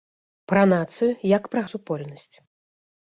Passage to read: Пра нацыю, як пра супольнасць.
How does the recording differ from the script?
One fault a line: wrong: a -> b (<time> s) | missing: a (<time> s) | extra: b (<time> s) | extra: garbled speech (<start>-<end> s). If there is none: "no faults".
no faults